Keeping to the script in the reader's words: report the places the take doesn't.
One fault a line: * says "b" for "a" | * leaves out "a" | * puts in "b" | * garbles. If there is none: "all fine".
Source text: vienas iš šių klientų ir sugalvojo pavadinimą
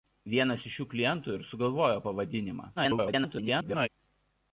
* garbles